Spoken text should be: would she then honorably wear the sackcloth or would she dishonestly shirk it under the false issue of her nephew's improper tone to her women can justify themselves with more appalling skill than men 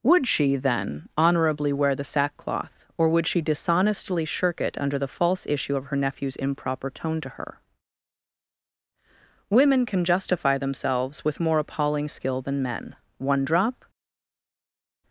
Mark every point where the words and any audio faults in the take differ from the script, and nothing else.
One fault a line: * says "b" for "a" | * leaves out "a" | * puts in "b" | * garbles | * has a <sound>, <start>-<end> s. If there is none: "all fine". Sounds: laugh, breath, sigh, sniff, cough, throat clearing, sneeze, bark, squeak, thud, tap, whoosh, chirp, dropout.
* puts in "one drop"